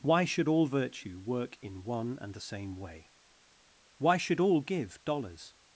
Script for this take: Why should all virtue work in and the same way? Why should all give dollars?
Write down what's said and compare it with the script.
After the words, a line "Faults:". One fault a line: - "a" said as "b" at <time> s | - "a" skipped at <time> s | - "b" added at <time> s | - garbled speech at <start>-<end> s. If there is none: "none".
Why should all virtue work in one and the same way? Why should all give dollars?
Faults:
- "one" added at 1.8 s